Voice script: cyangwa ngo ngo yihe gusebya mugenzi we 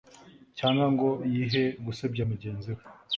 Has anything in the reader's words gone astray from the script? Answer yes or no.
yes